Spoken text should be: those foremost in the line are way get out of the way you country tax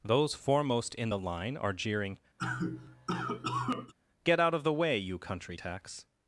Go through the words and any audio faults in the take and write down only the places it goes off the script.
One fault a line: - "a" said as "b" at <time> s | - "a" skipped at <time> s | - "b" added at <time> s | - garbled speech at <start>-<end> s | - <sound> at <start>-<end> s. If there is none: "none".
- "way" said as "jeering" at 1.7 s
- cough at 2.4-3.9 s